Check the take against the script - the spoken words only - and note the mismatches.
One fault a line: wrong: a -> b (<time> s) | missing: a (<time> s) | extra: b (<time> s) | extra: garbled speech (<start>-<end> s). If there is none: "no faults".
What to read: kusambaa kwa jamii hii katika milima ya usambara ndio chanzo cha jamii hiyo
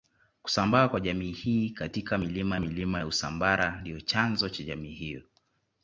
extra: milima (2.6 s)